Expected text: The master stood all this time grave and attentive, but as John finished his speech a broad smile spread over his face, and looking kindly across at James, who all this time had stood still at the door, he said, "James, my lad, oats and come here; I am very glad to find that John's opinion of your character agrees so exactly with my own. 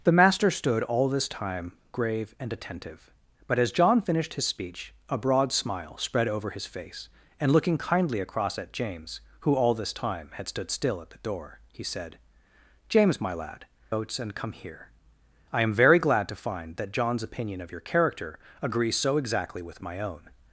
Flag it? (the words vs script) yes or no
no